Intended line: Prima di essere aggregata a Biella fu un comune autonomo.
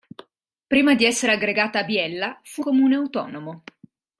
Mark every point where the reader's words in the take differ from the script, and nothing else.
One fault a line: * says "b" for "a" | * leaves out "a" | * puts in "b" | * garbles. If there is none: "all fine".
* leaves out "un"